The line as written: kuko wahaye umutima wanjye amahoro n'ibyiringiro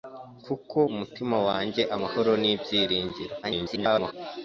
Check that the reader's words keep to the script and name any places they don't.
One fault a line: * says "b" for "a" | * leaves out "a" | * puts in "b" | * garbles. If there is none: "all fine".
* leaves out "wahaye"
* garbles